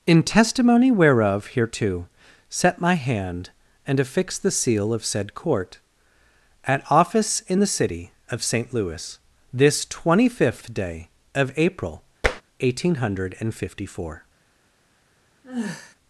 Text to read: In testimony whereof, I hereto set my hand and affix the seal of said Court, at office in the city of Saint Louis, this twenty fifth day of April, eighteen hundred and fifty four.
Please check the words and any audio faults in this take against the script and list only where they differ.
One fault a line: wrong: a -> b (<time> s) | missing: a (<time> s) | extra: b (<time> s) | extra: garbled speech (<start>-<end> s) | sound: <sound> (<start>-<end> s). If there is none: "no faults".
missing: I (1.5 s)
sound: tap (12.2-12.4 s)
sound: sigh (15.4-16.0 s)